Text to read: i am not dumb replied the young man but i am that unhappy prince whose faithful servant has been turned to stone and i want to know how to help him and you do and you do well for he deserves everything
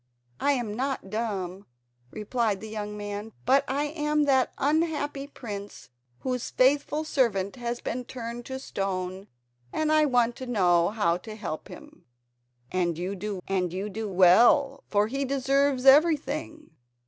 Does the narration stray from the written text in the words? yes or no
no